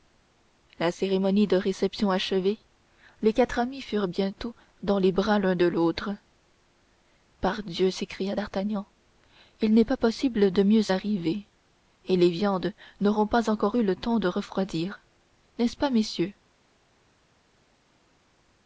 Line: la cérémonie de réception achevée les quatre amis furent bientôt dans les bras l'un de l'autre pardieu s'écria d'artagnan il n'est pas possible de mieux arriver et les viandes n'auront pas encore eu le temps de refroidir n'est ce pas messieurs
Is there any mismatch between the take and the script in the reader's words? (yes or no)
no